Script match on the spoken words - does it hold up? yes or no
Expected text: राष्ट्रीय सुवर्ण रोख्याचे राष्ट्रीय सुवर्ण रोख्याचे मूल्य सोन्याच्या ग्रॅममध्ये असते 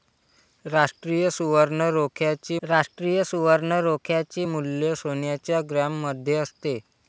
yes